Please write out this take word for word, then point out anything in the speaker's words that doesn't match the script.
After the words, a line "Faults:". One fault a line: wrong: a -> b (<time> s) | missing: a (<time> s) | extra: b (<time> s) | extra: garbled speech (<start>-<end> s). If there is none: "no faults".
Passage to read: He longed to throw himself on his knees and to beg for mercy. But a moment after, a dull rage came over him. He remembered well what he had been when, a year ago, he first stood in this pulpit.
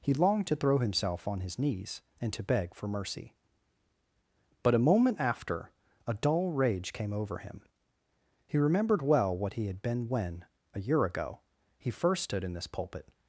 He longed to throw himself on his knees and to beg for mercy. But a moment after, a dull rage came over him. He remembered well what he had been when, a year ago, he first stood in this pulpit.
Faults:
no faults